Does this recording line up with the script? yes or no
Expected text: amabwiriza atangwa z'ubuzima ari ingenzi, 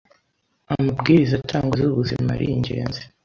yes